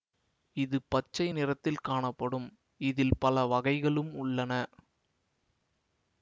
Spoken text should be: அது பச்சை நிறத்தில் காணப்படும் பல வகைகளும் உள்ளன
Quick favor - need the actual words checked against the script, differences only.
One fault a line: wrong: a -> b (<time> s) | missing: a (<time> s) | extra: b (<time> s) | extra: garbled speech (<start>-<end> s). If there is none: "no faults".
wrong: அது -> இது (0.6 s)
extra: இதில் (2.8 s)